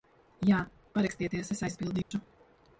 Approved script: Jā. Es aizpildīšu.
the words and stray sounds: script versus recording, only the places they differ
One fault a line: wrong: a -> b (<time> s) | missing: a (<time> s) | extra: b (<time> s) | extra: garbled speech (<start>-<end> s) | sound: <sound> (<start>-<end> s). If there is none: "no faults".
extra: Parakstieties (1.0 s)
sound: dropout (2.0-2.1 s)